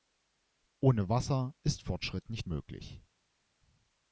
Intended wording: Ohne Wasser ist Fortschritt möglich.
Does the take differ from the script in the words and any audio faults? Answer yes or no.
yes